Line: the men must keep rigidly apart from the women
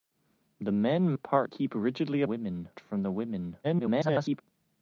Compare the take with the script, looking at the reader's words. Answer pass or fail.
fail